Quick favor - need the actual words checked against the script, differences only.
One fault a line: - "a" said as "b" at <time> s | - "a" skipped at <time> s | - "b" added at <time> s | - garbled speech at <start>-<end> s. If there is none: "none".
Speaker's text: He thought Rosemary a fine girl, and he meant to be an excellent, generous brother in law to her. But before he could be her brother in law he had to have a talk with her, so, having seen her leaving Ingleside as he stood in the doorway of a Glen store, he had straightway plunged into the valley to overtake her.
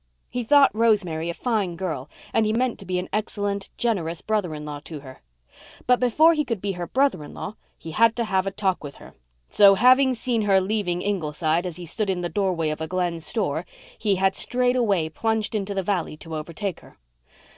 none